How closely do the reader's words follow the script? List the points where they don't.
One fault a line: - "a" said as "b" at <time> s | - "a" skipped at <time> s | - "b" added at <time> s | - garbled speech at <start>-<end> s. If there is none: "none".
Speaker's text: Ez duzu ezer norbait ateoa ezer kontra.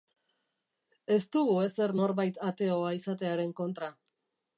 - "duzu" said as "dugu" at 1.4 s
- "ezer" said as "izatearen" at 3.0 s